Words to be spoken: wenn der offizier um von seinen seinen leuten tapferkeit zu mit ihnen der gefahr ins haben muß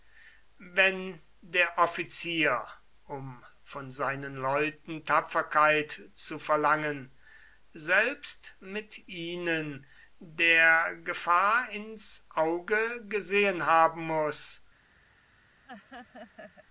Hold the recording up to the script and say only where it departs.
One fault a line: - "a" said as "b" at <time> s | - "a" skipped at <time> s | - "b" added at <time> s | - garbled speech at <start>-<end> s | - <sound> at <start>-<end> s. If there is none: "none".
- "seinen" skipped at 4.3 s
- "verlangen selbst" added at 6.4 s
- "auge gesehen" added at 12.3 s
- laugh at 15.6-16.7 s